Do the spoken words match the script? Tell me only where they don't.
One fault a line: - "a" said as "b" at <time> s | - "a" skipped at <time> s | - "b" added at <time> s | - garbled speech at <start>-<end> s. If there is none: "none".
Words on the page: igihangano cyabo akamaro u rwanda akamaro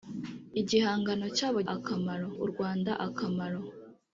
none